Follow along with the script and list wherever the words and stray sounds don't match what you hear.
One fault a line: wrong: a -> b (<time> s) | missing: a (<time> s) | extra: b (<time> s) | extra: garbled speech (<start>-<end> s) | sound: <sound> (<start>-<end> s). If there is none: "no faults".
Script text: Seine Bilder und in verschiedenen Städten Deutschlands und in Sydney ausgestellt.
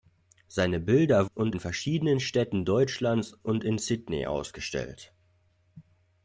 no faults